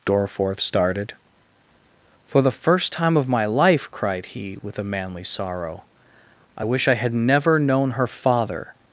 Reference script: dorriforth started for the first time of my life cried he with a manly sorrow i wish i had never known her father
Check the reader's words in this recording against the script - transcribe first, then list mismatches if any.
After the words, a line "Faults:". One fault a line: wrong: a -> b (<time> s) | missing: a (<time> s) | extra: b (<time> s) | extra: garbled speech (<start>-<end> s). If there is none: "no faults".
dorriforth started for the first time of my life cried he with a manly sorrow i wish i had never known her father
Faults:
no faults